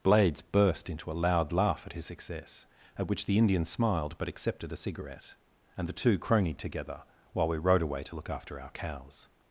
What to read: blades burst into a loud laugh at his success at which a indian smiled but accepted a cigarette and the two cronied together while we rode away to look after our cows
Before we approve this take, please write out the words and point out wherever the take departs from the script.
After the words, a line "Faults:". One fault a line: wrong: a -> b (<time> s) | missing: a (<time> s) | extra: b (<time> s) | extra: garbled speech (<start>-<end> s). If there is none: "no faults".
blades burst into a loud laugh at his success at which the indian smiled but accepted a cigarette and the two cronied together while we rode away to look after our cows
Faults:
wrong: a -> the (3.2 s)